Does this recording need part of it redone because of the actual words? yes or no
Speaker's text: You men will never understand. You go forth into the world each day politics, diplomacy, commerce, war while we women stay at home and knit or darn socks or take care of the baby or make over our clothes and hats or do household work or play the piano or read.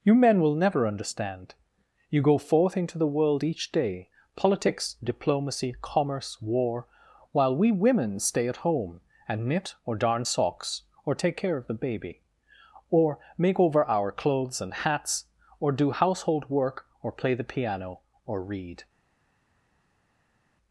no